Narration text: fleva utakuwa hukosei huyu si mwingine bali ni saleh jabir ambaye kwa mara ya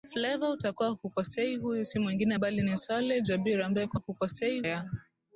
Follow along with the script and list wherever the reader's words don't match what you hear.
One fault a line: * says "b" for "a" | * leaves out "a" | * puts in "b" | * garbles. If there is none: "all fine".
* says "hukosei" for "mara"